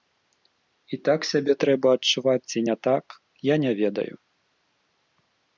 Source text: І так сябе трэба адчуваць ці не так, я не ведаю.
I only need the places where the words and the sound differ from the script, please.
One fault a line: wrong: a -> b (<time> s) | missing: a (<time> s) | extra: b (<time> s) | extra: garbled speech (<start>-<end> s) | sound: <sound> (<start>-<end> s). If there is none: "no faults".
no faults